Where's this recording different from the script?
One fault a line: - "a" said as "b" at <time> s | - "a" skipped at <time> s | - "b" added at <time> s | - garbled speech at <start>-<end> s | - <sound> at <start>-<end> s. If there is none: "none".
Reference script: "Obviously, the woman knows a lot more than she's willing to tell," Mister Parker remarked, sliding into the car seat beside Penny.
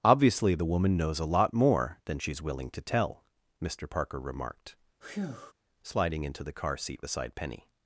- breath at 5.0-5.5 s